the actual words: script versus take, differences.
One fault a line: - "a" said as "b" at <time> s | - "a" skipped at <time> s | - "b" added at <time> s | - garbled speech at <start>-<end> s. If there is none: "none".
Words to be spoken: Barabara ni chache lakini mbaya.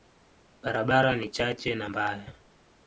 - "lakini" said as "na" at 1.8 s